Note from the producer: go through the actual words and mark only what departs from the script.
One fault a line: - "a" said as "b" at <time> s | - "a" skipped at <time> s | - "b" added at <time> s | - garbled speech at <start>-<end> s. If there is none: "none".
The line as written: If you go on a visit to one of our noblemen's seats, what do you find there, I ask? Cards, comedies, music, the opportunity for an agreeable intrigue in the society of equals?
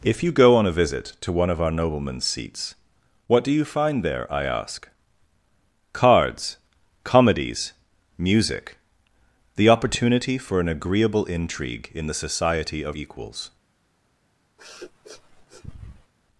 none